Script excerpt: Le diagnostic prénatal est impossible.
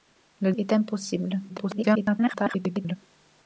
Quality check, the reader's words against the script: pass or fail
fail